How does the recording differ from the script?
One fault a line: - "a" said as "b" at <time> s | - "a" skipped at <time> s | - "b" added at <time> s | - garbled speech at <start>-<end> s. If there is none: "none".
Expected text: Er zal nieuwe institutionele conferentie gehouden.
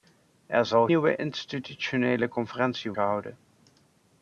none